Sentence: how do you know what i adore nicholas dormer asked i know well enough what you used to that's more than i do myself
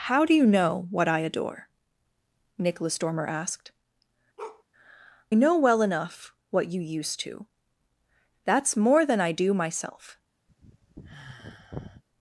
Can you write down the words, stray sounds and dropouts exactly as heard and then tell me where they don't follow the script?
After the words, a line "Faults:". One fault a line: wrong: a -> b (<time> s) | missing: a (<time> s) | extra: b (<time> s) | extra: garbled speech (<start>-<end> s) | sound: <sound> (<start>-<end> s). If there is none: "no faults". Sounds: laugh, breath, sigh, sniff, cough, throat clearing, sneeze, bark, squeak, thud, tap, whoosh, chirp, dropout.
how do you know what i adore nicholas dormer asked know well enough what you used to that's more than i do myself
Faults:
missing: i (3.7 s)
sound: bark (4.4-4.6 s)
sound: sigh (10.5-12.0 s)